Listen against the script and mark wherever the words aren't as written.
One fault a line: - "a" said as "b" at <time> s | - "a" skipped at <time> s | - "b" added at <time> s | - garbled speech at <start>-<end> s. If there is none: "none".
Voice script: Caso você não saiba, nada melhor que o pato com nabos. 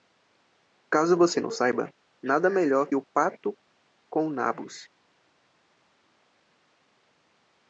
- "que" skipped at 2.9 s